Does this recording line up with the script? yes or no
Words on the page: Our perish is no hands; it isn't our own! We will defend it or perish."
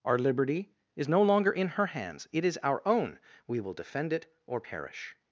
no